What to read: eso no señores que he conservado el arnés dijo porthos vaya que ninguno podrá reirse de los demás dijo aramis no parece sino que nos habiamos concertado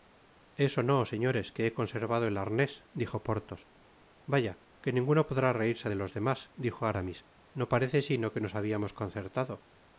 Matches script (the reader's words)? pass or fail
pass